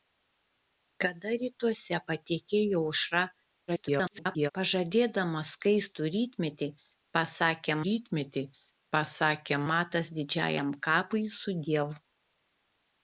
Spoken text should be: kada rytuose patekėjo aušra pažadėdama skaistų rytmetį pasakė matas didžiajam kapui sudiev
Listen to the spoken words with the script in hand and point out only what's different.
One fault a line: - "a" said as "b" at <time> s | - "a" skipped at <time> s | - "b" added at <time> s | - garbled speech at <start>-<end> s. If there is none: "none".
- garbled speech at 3.7-4.5 s
- "rytmetį pasakė" added at 7.9 s